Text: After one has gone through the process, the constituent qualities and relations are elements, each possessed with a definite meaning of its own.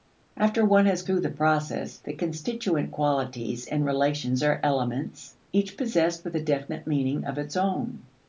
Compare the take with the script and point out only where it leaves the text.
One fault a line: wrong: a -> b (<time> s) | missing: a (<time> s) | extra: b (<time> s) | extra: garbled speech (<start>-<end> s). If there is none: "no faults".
missing: gone (1.0 s)